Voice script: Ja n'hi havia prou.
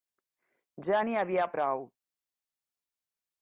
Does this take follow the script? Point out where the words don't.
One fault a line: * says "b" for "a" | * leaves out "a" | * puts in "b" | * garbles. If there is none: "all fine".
all fine